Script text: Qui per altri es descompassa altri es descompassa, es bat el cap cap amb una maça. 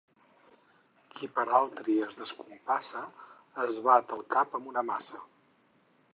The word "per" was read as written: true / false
true